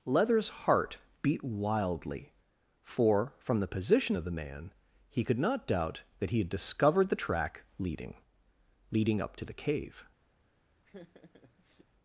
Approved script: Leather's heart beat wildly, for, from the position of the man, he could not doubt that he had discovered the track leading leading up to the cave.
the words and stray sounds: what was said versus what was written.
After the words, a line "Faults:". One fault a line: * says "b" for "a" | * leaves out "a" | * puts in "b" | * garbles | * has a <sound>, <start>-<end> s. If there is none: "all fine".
Leather's heart beat wildly, for, from the position of the man, he could not doubt that he had discovered the track leading leading up to the cave.
Faults:
* has a laugh, 10.8-11.9 s